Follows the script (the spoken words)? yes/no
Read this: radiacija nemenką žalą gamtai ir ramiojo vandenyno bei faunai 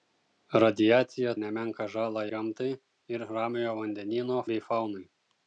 yes